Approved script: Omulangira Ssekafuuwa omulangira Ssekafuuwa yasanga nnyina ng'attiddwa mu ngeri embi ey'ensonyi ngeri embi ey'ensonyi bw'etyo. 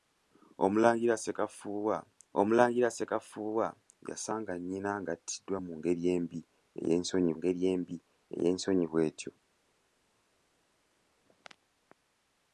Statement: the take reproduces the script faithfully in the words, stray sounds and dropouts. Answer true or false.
true